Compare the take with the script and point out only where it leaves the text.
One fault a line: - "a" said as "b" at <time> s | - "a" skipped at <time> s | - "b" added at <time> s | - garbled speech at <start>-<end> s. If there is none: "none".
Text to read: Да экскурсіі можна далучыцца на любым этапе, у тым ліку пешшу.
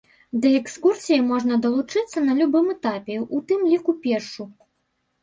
none